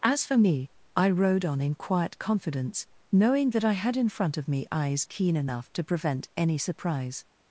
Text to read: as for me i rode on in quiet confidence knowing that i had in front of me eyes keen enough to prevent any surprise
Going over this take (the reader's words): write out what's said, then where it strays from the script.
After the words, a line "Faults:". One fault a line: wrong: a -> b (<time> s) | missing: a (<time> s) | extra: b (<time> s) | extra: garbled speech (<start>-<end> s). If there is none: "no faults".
as for me i rode on in quiet confidence knowing that i had in front of me eyes keen enough to prevent any surprise
Faults:
no faults